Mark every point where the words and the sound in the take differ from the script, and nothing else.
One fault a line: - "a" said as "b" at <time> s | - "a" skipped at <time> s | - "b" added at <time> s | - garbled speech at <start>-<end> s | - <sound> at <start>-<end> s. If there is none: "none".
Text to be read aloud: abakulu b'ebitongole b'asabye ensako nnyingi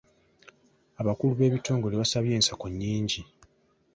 none